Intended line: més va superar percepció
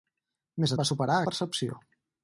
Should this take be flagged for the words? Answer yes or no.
no